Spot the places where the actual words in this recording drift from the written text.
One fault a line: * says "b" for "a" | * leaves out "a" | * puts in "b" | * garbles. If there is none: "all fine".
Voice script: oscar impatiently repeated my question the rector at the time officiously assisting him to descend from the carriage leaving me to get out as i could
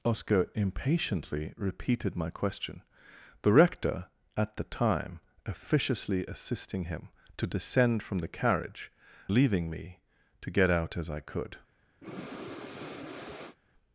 all fine